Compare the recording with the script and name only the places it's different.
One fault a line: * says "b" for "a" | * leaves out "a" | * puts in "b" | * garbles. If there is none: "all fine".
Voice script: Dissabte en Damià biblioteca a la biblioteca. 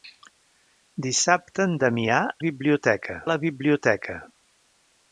all fine